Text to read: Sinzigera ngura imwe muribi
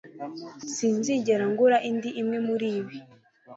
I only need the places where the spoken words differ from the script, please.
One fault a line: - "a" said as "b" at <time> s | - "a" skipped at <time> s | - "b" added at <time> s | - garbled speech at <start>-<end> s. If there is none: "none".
- "indi" added at 1.9 s